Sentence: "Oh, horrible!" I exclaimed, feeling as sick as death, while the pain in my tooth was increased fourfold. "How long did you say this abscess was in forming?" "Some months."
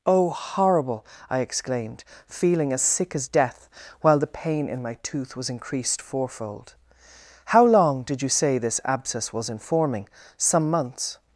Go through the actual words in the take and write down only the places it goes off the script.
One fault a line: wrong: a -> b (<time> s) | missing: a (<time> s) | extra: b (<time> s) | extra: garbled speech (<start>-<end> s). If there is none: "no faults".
no faults